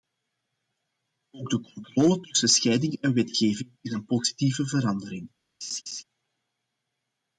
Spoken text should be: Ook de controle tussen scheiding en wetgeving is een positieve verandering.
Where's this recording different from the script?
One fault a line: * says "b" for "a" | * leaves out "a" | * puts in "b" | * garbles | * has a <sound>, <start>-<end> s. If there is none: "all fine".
* has a laugh, 5.6-6.0 s